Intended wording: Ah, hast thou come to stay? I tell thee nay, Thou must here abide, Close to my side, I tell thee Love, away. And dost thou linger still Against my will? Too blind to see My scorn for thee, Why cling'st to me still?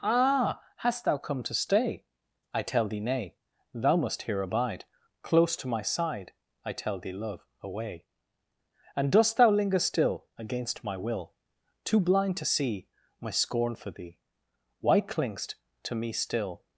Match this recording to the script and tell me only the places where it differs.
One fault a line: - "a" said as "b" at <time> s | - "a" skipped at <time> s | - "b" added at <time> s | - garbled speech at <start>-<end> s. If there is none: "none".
none